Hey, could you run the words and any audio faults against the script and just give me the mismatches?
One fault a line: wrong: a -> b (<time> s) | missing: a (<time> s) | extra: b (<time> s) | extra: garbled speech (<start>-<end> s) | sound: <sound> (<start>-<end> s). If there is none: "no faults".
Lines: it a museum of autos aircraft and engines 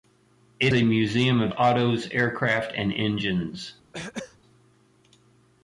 sound: throat clearing (3.9-4.4 s)